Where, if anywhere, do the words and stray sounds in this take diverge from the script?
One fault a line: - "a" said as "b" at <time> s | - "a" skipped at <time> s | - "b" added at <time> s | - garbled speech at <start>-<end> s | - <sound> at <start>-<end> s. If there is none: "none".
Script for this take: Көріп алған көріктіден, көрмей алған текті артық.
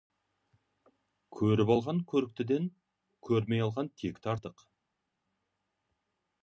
none